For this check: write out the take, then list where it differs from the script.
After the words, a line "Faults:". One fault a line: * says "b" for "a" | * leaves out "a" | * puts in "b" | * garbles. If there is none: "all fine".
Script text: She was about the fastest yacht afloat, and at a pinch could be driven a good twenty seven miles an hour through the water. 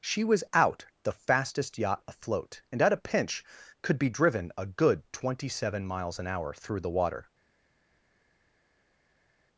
She was out the fastest yacht afloat, and at a pinch could be driven a good twenty seven miles an hour through the water.
Faults:
* says "out" for "about"